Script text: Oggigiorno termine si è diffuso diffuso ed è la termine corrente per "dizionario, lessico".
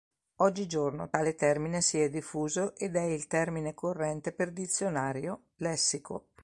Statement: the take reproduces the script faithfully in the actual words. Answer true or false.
false